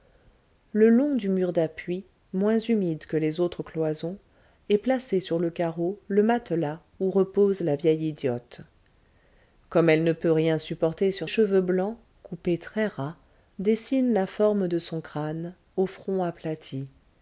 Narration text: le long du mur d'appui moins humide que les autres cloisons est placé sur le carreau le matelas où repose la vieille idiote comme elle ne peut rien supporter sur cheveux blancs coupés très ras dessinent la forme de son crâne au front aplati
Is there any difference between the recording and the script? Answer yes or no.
no